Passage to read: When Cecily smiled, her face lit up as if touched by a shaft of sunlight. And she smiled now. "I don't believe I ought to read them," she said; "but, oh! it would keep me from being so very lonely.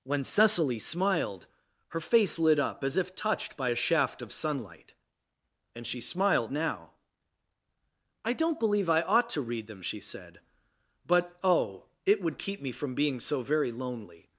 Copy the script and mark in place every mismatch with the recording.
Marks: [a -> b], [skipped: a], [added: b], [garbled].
When Cecily smiled, her face lit up as if touched by a shaft of sunlight. And she smiled now. "I don't believe I ought to read them," she said; "but, oh! it would keep me from being so very lonely.